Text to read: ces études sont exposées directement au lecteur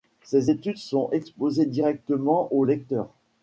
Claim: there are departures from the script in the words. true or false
false